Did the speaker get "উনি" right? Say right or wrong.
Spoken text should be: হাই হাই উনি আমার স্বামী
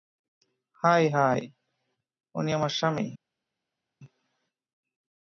right